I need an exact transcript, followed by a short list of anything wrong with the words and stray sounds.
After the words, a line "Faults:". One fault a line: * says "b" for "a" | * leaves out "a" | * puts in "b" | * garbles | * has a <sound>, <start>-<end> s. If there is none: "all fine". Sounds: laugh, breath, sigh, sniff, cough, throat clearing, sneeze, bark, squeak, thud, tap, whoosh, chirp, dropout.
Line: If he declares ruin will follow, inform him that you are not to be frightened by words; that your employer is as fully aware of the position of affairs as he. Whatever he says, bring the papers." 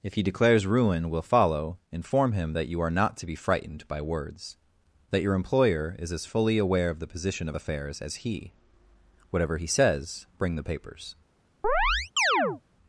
If he declares ruin will follow, inform him that you are not to be frightened by words; that your employer is as fully aware of the position of affairs as he. Whatever he says, bring the papers."
Faults:
* has a chirp, 11.6-12.6 s